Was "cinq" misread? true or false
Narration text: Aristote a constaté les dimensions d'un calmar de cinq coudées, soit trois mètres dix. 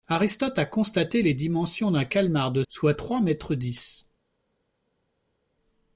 true